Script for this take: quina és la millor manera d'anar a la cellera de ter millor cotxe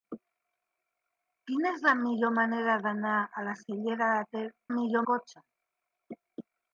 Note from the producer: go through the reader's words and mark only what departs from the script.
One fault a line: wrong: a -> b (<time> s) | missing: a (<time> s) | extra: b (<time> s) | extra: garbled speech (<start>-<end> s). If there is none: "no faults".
no faults